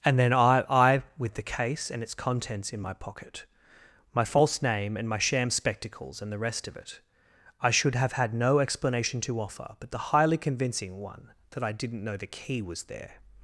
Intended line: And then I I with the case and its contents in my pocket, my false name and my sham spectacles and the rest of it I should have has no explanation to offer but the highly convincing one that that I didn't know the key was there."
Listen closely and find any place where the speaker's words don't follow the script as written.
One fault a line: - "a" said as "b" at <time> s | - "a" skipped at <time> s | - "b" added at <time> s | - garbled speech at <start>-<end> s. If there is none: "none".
- "has" said as "had" at 8.1 s
- "that" skipped at 11.6 s